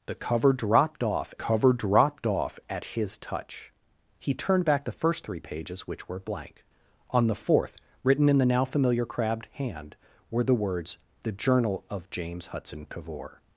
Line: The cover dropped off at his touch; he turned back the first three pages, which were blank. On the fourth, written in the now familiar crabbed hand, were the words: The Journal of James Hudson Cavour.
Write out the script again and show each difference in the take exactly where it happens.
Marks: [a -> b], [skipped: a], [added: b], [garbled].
The cover dropped off [added: cover dropped off] at his touch; he turned back the first three pages, which were blank. On the fourth, written in the now familiar crabbed hand, were the words: The Journal of James Hudson Cavour.